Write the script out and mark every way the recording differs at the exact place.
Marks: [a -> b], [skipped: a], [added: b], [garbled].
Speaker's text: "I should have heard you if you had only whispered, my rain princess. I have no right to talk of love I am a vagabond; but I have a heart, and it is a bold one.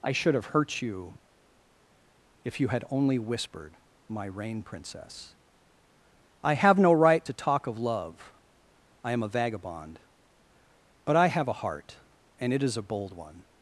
"I should have [heard -> hurt] you if you had only whispered, my rain princess. I have no right to talk of love I am a vagabond; but I have a heart, and it is a bold one.